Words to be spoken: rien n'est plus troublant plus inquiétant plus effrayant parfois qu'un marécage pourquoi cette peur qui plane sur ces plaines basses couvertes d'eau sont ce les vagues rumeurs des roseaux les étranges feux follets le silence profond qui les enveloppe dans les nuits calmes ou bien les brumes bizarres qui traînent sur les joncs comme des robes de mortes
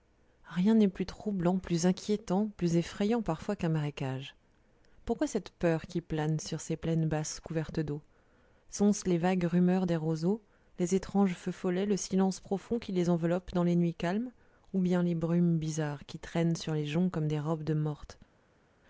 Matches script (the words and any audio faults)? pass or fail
pass